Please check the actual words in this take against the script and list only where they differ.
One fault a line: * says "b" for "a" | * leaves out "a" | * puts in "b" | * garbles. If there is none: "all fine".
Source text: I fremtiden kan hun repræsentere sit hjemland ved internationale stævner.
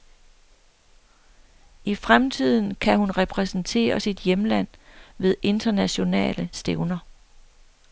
all fine